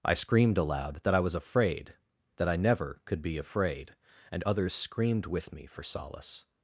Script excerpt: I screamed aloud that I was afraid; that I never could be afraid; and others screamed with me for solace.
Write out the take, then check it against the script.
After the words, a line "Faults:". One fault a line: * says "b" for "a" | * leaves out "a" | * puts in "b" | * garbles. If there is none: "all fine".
I screamed aloud that I was afraid; that I never could be afraid; and others screamed with me for solace.
Faults:
all fine